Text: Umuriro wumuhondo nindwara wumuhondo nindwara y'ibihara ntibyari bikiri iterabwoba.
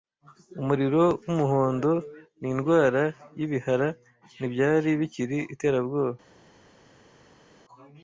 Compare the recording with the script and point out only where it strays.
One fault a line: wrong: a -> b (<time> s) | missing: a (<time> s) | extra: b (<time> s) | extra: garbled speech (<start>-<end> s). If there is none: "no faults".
missing: wumuhondo nindwara (3.0 s)